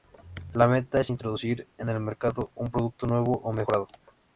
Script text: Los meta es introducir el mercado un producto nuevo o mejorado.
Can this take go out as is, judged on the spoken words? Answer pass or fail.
fail